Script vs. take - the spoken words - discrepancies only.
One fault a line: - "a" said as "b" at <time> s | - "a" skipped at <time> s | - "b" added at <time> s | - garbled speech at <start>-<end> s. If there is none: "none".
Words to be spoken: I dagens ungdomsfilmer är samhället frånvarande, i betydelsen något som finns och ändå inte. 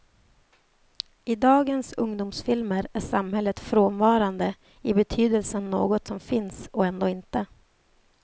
none